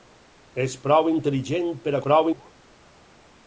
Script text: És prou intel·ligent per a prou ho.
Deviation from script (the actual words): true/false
false